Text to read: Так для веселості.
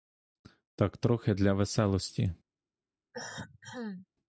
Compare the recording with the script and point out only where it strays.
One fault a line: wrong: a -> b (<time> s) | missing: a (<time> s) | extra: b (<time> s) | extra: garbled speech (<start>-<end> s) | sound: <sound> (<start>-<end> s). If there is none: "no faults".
extra: трохи (1.0 s)
sound: cough (3.1-4.1 s)